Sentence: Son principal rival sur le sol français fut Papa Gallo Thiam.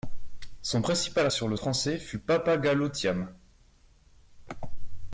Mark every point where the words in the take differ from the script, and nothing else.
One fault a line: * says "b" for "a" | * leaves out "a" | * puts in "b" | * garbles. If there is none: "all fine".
* leaves out "rival"
* leaves out "sol"